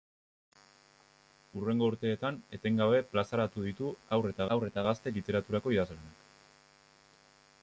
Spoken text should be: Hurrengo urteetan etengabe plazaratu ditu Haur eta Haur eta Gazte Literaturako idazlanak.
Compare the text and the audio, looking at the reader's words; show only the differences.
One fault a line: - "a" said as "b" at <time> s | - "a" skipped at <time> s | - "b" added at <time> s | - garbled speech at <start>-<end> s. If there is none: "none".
none